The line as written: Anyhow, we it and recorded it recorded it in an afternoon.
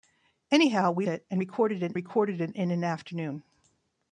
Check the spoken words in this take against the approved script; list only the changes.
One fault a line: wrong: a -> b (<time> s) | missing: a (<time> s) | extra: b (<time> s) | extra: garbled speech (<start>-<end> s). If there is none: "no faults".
no faults